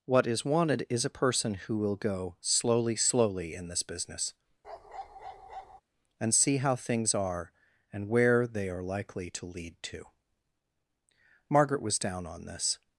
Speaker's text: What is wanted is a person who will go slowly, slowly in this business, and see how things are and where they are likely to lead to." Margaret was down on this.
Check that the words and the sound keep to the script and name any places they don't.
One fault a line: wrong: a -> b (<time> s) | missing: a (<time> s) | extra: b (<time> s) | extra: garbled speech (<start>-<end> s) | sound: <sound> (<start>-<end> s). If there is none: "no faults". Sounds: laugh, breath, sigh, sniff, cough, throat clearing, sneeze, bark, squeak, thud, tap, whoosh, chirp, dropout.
sound: bark (4.6-5.8 s)